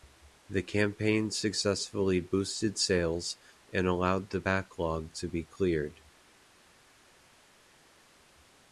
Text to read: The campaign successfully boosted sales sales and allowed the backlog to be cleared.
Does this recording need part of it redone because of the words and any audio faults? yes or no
yes